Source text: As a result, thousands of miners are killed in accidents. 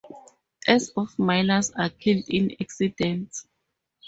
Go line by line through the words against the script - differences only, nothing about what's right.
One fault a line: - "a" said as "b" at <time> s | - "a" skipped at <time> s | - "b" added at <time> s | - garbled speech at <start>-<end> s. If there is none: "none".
- "a result thousands" skipped at 0.9 s